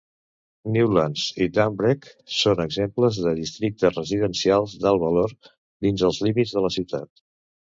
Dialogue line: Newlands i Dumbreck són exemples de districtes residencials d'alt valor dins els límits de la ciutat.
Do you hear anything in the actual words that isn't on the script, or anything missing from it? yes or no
no